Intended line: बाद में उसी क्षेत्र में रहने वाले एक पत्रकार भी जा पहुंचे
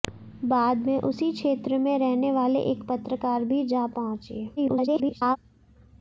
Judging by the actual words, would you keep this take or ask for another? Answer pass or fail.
fail